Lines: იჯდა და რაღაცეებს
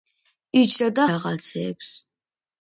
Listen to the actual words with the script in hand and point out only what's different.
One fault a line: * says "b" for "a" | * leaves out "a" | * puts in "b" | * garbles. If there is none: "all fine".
all fine